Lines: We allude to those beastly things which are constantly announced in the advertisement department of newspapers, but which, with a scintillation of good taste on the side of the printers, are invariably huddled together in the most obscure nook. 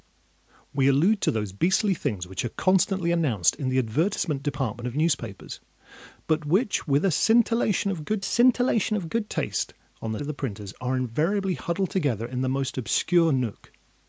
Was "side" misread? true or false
true